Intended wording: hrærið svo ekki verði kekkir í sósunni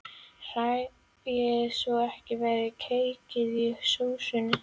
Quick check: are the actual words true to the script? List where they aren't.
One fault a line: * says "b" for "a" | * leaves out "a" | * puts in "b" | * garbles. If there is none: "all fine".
all fine